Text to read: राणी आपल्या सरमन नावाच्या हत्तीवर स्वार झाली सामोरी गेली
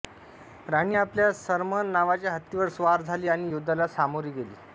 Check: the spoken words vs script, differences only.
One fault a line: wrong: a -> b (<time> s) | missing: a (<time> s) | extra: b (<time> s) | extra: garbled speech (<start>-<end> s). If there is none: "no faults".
extra: आणि युद्धाला (3.3 s)